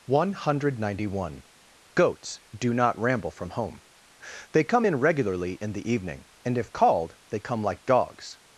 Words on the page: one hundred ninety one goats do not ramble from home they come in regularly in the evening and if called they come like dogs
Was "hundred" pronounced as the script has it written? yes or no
yes